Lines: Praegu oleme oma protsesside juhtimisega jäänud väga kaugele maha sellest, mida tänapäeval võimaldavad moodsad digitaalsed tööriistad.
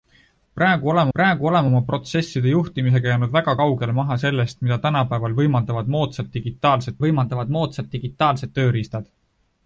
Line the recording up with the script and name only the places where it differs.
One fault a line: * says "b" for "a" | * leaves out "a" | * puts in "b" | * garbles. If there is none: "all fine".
* puts in "praegu oleme"
* puts in "võimaldavad moodsad digitaalsed"